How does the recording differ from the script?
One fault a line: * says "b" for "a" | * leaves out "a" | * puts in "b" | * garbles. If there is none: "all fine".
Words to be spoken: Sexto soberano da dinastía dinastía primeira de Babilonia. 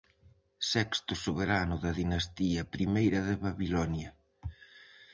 * leaves out "dinastía"